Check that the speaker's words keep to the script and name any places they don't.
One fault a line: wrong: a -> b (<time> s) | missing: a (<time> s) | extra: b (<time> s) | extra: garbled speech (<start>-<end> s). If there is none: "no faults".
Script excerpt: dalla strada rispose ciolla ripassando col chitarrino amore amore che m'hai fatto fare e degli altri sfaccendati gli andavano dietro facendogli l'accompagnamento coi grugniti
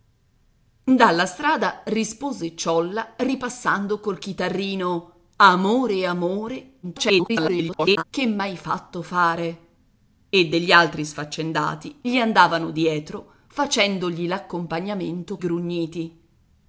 extra: garbled speech (6.8-8.0 s)
missing: coi (15.4 s)